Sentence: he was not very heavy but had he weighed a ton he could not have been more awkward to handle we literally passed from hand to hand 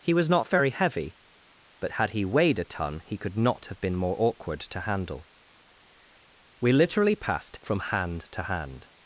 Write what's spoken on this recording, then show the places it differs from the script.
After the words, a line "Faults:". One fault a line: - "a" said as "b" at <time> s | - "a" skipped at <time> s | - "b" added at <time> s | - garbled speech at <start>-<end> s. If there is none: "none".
he was not very heavy but had he weighed a ton he could not have been more awkward to handle we literally passed from hand to hand
Faults:
none